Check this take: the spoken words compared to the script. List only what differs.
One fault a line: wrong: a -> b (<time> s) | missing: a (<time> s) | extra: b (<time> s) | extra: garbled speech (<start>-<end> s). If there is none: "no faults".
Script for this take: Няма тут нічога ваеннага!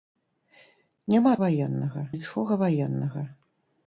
wrong: тут -> ваеннага (1.4 s)